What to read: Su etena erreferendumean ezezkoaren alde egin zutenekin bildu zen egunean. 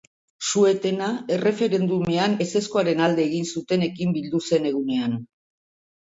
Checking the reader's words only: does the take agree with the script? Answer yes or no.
yes